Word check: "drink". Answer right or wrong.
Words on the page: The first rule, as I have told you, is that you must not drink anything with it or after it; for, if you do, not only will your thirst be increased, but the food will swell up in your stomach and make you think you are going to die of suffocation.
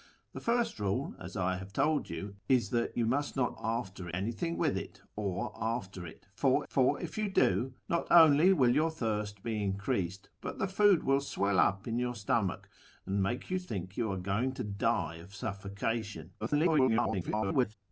wrong